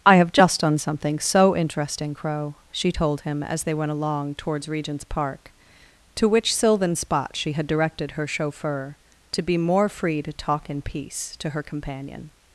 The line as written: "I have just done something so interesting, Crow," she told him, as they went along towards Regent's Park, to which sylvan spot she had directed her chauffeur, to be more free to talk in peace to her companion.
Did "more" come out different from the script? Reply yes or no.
no